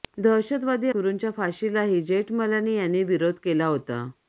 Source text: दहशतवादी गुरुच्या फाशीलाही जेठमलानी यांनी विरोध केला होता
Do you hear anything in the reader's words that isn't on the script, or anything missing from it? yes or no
no